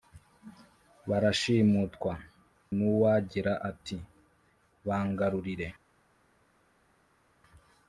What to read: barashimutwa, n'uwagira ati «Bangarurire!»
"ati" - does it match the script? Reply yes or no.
yes